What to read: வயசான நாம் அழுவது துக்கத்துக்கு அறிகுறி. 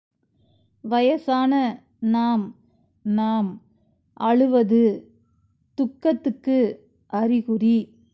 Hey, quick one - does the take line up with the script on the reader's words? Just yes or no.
no